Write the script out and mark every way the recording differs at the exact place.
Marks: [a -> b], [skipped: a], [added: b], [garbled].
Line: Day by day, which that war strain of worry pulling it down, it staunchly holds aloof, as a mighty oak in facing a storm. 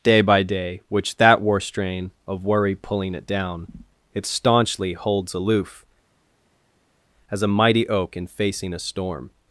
Day by day, which that war strain of worry pulling it down, it staunchly holds aloof, as a mighty oak in facing a storm.